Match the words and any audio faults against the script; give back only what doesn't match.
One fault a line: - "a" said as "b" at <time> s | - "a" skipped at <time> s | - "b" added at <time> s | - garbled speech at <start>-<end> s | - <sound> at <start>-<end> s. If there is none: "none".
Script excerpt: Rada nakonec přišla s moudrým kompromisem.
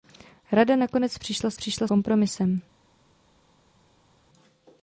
- "moudrým" said as "přišla" at 1.5 s